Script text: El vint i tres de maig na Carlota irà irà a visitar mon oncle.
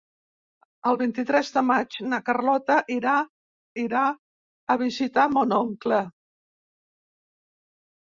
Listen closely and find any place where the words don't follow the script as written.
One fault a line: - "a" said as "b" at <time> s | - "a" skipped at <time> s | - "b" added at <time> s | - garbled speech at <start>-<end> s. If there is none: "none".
none